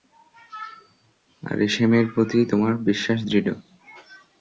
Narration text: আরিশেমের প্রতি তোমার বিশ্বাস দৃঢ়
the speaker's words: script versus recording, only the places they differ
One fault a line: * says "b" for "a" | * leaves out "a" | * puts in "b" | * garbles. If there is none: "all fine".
all fine